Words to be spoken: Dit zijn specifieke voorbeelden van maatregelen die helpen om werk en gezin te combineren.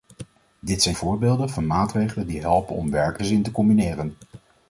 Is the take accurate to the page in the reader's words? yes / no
no